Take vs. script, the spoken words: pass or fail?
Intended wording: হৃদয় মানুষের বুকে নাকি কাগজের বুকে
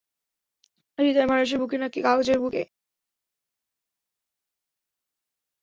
pass